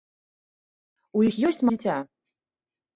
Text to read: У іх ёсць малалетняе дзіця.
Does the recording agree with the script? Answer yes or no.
no